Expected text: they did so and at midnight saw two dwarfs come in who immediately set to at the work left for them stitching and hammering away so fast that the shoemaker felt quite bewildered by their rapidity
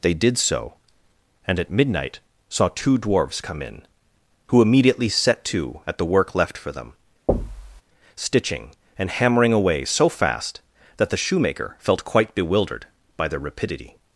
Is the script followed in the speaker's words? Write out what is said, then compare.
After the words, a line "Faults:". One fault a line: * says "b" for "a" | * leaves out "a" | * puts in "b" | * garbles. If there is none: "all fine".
they did so and at midnight saw two dwarfs come in who immediately set to at the work left for them stitching and hammering away so fast that the shoemaker felt quite bewildered by their rapidity
Faults:
all fine